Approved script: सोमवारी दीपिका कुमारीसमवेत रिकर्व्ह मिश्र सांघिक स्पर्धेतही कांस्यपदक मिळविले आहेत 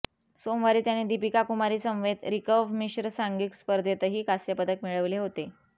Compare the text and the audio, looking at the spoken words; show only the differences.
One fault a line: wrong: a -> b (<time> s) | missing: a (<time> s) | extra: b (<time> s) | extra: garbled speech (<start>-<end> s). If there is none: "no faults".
extra: त्याने (0.8 s)
wrong: आहेत -> होते (5.2 s)